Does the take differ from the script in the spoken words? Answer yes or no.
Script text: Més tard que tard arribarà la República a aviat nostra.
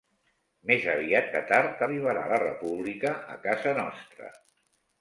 yes